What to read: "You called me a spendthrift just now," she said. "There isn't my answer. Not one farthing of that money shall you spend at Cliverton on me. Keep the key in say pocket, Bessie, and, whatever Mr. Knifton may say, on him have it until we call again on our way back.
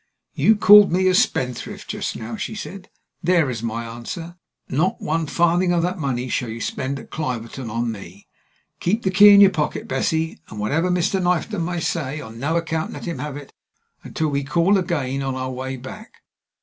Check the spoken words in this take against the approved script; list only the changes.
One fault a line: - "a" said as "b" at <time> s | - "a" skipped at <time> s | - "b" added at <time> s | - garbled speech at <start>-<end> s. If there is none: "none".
- "isn't" said as "is" at 3.5 s
- "say" said as "your" at 9.4 s
- "no account let" added at 12.4 s